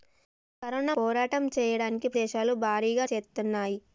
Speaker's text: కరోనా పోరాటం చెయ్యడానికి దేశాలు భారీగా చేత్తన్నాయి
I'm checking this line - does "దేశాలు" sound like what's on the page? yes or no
yes